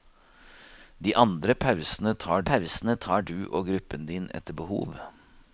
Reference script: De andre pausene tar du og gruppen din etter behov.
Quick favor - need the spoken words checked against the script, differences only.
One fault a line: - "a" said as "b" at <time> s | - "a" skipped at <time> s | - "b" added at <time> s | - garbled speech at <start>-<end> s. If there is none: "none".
- "pausene tar" added at 2.5 s